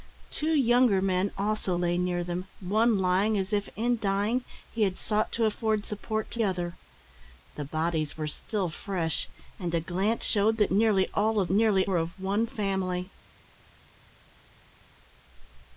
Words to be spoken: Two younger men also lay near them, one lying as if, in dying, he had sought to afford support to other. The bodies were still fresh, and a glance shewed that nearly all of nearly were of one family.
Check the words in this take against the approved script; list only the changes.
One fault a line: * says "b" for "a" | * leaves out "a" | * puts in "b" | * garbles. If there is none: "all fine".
all fine